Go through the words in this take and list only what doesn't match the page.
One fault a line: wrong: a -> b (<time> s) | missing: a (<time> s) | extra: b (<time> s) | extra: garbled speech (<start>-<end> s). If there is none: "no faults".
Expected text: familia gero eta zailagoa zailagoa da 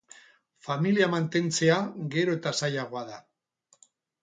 extra: mantentzea (1.1 s)
missing: zailagoa (3.1 s)